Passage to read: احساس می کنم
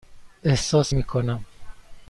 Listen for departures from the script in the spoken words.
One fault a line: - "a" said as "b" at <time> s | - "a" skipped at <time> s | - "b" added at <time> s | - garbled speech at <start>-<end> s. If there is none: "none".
none